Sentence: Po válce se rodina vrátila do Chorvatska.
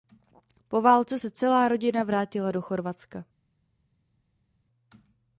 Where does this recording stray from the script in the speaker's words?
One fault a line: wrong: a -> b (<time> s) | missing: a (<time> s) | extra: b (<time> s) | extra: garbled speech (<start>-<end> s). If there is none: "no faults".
extra: celá (1.3 s)